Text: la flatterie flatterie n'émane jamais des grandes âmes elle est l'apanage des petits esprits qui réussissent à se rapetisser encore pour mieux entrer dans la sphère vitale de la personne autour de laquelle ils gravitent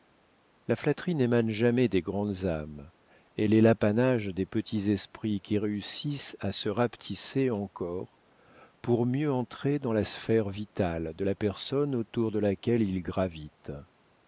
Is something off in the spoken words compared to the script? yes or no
yes